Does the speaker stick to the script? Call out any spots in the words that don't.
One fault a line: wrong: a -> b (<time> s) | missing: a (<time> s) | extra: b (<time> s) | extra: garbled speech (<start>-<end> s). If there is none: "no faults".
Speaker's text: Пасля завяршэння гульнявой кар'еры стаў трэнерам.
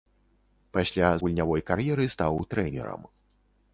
missing: завяршэння (1.1 s)